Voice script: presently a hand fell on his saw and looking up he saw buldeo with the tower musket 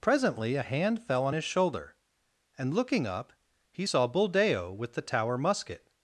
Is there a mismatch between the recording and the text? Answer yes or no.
yes